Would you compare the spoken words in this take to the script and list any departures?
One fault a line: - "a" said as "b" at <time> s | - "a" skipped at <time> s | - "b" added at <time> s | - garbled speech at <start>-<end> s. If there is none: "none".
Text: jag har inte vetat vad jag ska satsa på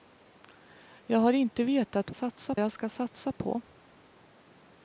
- "vad" said as "satsa" at 2.1 s